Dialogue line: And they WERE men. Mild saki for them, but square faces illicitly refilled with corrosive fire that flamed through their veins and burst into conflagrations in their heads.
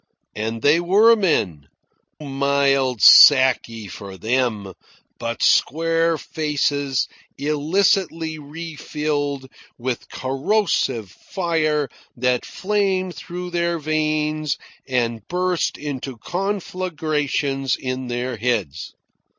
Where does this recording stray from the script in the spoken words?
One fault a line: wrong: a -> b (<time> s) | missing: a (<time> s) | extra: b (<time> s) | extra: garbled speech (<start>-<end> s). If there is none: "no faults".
no faults